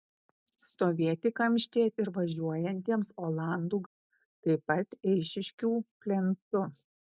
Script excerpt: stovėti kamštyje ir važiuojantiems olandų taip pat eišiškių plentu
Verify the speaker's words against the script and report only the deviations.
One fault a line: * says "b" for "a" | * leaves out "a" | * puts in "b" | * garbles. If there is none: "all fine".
all fine